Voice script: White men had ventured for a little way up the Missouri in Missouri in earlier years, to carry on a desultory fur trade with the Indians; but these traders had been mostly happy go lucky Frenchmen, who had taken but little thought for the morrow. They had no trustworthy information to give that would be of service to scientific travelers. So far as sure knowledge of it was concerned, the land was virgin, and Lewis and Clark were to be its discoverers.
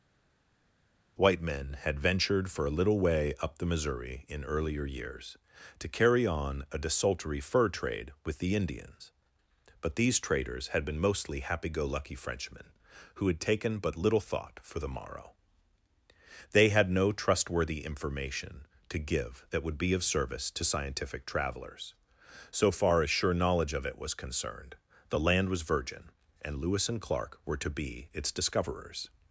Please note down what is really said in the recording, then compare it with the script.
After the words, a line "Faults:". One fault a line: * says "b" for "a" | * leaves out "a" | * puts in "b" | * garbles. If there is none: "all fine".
White men had ventured for a little way up the Missouri in earlier years, to carry on a desultory fur trade with the Indians; but these traders had been mostly happy go lucky Frenchmen, who had taken but little thought for the morrow. They had no trustworthy information to give that would be of service to scientific travelers. So far as sure knowledge of it was concerned, the land was virgin, and Lewis and Clark were to be its discoverers.
Faults:
* leaves out "Missouri in"